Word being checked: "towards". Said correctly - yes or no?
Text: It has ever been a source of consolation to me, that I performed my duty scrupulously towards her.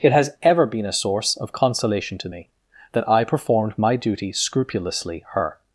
no